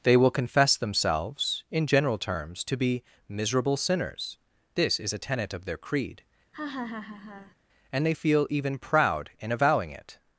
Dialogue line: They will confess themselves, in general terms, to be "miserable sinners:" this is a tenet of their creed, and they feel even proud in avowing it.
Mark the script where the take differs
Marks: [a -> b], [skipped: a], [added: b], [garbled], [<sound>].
They will confess themselves, in general terms, to be "miserable sinners:" this is a tenet of their creed, [laugh] and they feel even proud in avowing it.